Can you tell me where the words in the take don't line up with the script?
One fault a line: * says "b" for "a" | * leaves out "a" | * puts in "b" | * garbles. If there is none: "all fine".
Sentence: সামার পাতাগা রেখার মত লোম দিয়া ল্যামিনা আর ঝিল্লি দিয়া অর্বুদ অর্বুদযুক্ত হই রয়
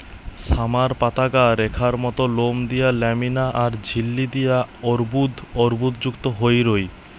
all fine